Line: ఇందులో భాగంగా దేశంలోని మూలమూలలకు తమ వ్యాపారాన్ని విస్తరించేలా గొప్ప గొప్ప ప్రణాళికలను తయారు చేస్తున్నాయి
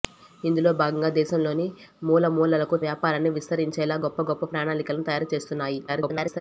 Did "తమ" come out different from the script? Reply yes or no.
yes